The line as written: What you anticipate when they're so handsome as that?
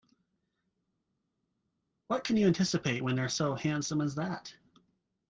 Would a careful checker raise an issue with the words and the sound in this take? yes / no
yes